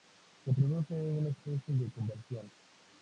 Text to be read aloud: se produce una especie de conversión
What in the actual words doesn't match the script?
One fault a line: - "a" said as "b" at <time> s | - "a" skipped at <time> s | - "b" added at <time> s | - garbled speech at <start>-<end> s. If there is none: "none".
none